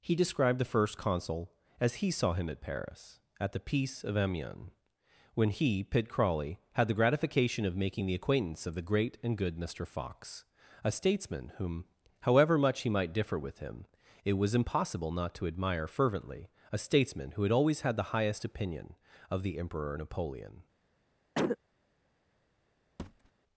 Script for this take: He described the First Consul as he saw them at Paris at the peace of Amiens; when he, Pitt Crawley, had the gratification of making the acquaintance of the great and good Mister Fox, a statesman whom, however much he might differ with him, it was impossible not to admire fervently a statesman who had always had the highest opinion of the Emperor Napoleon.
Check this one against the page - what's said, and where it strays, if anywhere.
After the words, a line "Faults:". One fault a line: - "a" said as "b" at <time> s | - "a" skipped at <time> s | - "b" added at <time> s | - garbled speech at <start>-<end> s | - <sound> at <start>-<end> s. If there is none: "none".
He described the First Consul as he saw him at Paris at the peace of Amiens; when he, Pitt Crawley, had the gratification of making the acquaintance of the great and good Mister Fox, a statesman whom, however much he might differ with him, it was impossible not to admire fervently a statesman who had always had the highest opinion of the Emperor Napoleon.
Faults:
- "them" said as "him" at 2.3 s
- cough at 21.3-21.6 s
- thud at 23.0-23.3 s